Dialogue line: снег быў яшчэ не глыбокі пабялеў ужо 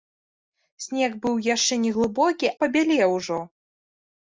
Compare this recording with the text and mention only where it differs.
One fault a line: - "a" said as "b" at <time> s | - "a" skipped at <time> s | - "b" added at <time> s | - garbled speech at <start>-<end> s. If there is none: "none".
none